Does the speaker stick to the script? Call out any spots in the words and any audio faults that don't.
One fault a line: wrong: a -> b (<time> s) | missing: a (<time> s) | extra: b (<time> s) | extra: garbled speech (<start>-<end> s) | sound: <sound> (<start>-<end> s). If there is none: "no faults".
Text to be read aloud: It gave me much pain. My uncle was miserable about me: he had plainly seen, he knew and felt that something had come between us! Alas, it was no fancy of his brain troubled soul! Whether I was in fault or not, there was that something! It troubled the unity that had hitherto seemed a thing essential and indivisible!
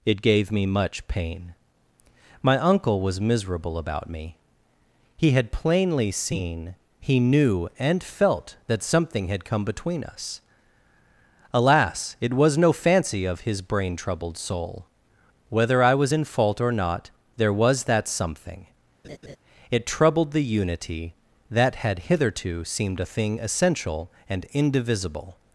sound: laugh (19.0-19.4 s)